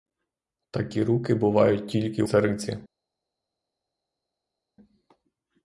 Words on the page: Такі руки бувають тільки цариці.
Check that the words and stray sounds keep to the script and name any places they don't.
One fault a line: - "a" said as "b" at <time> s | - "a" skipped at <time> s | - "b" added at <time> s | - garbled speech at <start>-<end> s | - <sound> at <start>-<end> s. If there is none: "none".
none